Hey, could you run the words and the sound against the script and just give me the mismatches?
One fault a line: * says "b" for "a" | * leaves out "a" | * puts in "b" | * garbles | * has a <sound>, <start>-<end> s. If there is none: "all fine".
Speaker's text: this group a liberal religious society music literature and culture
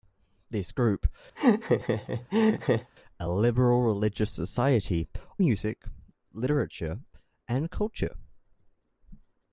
* has a laugh, 1.4-2.9 s